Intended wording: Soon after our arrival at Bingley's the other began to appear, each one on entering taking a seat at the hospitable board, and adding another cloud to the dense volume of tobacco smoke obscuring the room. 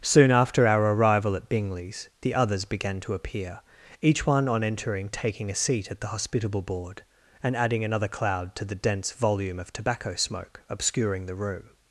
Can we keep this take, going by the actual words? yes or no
no